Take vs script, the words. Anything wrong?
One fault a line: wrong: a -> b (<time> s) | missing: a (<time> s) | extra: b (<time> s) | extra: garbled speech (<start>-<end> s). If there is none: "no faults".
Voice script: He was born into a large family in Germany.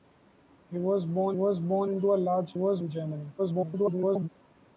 extra: was born (1.3 s)
wrong: family -> was (2.5 s)
extra: garbled speech (3.4-4.3 s)